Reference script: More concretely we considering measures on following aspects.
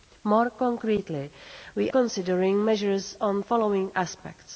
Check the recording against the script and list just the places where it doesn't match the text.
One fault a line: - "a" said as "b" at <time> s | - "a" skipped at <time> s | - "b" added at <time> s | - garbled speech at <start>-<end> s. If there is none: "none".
none